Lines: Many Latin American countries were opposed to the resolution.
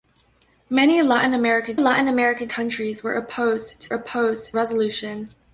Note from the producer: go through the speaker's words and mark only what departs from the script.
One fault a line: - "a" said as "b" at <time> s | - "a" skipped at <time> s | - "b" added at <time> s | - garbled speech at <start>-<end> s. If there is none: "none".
- "Latin American" added at 1.8 s
- "the" said as "opposed" at 3.9 s